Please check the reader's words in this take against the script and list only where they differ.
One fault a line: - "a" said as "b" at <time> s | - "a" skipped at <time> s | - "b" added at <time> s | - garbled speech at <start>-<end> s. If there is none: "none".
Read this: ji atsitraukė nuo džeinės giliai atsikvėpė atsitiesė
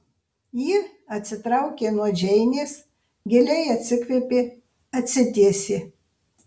none